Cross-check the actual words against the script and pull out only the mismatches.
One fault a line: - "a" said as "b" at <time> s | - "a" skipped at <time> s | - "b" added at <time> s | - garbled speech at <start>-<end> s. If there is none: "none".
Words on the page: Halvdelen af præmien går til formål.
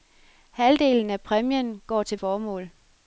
none